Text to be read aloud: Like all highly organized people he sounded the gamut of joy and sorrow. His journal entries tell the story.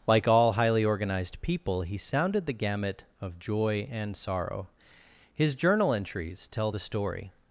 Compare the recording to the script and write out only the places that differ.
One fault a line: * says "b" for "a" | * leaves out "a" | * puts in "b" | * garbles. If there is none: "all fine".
all fine